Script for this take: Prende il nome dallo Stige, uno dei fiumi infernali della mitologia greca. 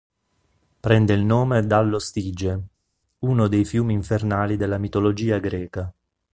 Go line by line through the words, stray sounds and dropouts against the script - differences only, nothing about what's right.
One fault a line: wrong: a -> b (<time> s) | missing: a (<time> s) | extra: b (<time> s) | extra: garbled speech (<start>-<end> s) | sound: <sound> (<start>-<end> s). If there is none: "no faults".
no faults